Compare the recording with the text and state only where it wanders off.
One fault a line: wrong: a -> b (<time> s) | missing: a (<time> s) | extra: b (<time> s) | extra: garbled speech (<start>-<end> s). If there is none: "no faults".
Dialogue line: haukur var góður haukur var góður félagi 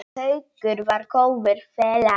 missing: haukur var góður (1.6 s)